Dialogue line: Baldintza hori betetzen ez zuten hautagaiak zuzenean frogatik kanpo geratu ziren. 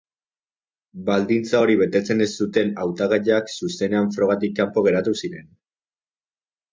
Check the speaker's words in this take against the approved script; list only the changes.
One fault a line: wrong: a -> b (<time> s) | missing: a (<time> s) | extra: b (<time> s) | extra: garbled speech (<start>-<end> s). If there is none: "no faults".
no faults